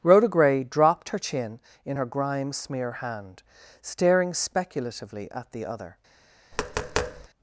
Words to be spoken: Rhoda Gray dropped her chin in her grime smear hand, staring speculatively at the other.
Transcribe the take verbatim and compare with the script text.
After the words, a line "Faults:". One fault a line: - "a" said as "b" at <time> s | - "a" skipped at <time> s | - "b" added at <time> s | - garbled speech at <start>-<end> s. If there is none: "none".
Rhoda Gray dropped her chin in her grime smear hand, staring speculatively at the other.
Faults:
none